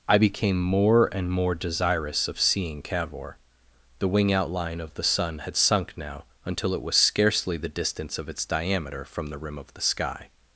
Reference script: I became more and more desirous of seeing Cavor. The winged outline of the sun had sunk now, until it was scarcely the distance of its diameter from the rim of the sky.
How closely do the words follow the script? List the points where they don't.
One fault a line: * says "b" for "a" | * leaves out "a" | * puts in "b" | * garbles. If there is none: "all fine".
* says "wing" for "winged"